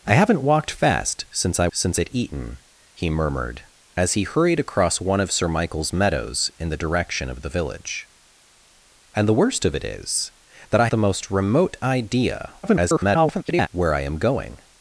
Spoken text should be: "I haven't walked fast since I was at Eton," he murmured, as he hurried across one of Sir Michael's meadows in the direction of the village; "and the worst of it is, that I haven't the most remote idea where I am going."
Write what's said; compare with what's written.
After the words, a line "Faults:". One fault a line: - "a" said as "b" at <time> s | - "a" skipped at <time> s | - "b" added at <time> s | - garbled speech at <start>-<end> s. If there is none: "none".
"I haven't walked fast since I since at Eton," he murmured, as he hurried across one of Sir Michael's meadows in the direction of the village; "and the worst of it is, that I the most remote idea [garbled] where I am going."
Faults:
- "was" said as "since" at 1.7 s
- "haven't" skipped at 10.9 s
- garbled speech at 12.6-13.7 s